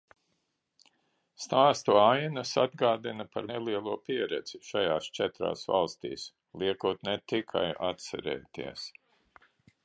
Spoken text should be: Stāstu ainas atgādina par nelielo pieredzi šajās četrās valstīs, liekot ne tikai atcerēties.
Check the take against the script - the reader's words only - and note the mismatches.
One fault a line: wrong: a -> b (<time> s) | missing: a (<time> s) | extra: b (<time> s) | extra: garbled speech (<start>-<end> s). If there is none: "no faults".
no faults